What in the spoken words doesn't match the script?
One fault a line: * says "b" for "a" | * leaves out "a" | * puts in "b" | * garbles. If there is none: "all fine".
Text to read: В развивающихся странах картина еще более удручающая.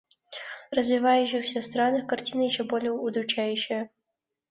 all fine